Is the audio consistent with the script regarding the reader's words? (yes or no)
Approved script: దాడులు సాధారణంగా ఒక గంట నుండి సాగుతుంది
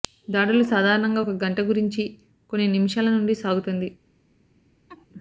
no